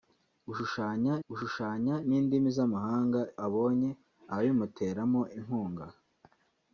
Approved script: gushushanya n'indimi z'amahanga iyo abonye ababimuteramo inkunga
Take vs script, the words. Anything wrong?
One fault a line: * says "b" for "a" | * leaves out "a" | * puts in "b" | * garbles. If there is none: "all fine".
* puts in "gushushanya"
* leaves out "iyo"